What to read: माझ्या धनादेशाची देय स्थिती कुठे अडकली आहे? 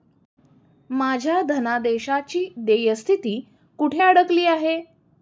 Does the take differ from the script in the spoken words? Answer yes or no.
no